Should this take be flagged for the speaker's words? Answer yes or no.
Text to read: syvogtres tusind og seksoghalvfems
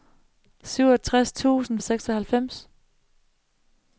no